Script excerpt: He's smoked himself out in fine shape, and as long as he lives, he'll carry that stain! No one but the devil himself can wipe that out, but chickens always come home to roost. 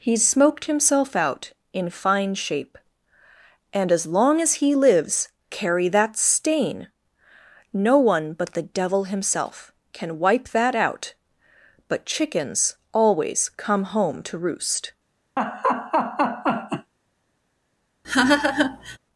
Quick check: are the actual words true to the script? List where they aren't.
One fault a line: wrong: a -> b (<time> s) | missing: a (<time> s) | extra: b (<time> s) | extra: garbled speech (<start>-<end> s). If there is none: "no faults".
missing: he'll (5.3 s)